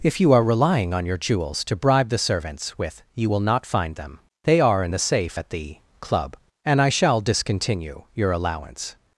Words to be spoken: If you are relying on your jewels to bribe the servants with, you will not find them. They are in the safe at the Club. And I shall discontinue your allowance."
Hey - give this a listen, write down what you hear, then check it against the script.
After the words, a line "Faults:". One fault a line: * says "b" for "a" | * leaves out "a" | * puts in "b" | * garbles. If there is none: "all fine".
If you are relying on your jewels to bribe the servants with, you will not find them. They are in the safe at the Club. And I shall discontinue your allowance."
Faults:
all fine